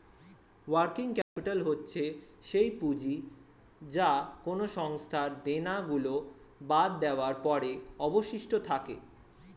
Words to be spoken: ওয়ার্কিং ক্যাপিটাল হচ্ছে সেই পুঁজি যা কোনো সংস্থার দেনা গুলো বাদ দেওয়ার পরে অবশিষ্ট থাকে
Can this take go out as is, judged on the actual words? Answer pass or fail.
pass